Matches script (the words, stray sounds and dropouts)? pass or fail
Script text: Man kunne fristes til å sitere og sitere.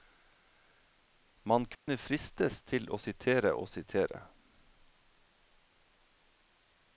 fail